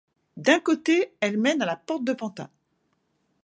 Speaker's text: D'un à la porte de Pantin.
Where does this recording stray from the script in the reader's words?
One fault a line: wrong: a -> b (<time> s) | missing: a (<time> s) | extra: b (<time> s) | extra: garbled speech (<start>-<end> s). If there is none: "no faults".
extra: côté elle mène (0.6 s)